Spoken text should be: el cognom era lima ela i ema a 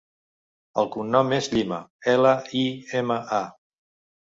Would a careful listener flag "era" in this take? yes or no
yes